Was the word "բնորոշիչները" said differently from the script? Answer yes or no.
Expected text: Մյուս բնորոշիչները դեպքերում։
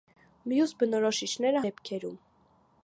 no